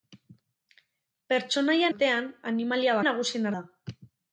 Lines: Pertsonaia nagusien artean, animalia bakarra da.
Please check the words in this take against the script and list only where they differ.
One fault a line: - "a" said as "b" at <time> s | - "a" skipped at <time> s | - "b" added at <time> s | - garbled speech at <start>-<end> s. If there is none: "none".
- "nagusien" skipped at 1.9 s
- "bakarra" said as "nagusien" at 3.1 s